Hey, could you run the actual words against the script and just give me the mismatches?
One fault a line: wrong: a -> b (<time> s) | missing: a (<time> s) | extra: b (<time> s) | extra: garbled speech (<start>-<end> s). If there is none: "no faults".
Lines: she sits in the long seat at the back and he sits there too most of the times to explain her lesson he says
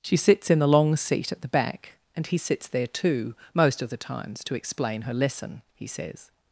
no faults